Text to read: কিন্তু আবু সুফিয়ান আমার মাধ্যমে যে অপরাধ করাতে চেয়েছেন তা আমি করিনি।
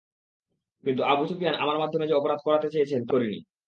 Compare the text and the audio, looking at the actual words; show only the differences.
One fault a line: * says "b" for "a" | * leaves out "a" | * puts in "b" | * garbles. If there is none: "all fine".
* leaves out "আমি"